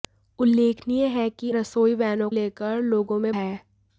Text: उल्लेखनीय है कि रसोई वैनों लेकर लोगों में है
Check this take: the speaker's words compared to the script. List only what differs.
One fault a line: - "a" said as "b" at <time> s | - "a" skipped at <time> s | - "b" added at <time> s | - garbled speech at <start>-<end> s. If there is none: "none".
none